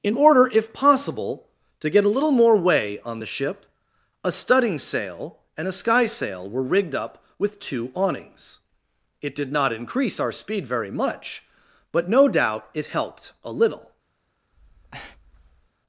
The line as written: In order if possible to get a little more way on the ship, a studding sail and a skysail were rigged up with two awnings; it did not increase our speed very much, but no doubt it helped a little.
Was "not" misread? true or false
false